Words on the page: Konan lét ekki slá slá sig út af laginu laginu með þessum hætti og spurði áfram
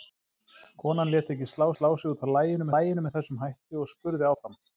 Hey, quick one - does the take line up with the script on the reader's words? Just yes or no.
yes